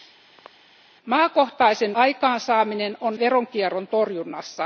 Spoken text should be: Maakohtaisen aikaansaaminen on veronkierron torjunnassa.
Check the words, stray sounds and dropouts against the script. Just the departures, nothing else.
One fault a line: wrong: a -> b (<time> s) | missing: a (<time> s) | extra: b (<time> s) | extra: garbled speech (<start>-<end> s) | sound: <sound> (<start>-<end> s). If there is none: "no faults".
sound: throat clearing (0.4-0.5 s)